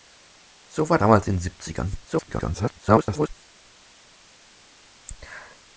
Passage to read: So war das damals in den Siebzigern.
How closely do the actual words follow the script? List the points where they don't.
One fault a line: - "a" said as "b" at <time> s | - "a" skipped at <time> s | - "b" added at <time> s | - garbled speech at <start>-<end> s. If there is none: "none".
- "das" skipped at 1.0 s
- garbled speech at 2.0-3.3 s